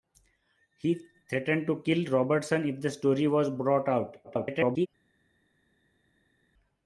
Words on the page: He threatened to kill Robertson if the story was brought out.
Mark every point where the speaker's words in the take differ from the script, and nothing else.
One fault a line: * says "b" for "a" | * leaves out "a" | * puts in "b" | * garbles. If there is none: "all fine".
* garbles